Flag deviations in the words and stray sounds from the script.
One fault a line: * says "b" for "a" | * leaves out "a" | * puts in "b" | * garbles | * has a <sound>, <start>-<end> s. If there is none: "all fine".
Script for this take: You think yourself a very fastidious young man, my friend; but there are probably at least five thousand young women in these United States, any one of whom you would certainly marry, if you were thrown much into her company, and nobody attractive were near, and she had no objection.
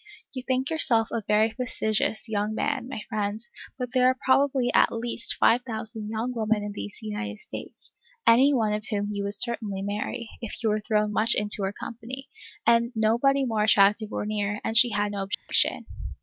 * puts in "more"
* has a dropout, 15.3-15.5 s